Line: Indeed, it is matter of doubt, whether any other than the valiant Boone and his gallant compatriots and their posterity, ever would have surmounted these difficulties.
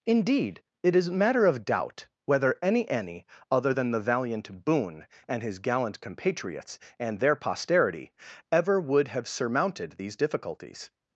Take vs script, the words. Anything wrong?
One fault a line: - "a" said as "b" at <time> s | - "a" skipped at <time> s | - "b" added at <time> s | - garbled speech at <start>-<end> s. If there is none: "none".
- "any" added at 2.9 s